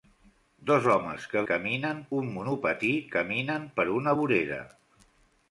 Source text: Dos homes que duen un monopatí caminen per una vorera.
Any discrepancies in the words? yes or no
yes